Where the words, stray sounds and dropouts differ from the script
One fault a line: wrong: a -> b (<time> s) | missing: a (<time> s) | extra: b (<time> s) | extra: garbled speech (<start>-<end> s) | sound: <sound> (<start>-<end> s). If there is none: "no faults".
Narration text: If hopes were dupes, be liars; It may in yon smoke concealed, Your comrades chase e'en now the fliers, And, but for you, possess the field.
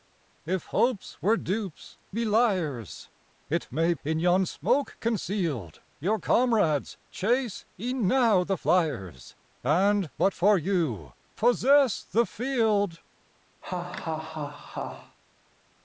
sound: laugh (13.6-15.2 s)